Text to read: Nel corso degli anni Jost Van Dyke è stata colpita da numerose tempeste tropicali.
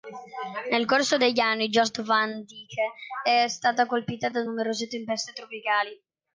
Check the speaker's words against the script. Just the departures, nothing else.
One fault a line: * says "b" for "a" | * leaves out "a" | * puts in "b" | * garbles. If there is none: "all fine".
all fine